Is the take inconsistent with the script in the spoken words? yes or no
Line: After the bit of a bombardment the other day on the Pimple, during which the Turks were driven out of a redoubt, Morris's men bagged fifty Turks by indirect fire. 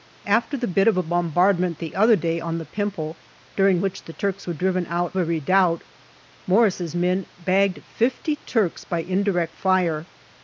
yes